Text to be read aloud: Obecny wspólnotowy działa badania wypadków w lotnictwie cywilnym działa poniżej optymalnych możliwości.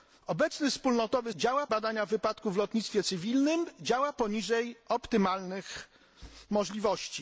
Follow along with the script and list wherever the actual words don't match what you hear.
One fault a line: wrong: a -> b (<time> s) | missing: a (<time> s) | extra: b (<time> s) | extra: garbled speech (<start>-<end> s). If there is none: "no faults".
no faults